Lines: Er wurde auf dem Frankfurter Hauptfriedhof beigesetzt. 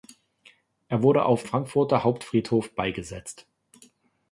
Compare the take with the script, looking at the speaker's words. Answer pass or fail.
fail